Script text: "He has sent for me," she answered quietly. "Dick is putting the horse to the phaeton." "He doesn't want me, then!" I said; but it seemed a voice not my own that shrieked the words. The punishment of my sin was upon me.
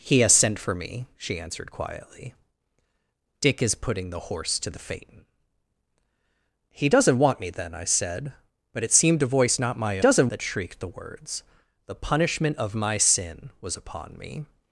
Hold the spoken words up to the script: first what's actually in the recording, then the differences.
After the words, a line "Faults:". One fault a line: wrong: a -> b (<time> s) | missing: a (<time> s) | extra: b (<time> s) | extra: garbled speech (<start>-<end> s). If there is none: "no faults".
"He has sent for me," she answered quietly. "Dick is putting the horse to the phaeton." "He doesn't want me, then!" I said; but it seemed a voice not my doesn't that shrieked the words. The punishment of my sin was upon me.
Faults:
wrong: own -> doesn't (10.0 s)